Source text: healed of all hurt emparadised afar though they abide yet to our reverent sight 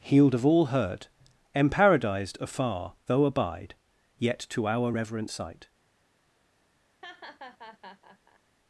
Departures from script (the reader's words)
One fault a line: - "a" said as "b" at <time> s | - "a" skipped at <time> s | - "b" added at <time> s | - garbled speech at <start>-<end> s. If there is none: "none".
- "they" skipped at 3.2 s